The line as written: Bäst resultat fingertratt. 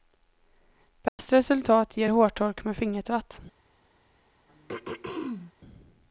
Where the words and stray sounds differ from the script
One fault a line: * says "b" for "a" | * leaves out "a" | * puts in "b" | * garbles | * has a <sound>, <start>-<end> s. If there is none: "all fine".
* has a dropout, 1.1-1.2 s
* puts in "ger hårtork med"
* has a throat clearing, 4.5-5.5 s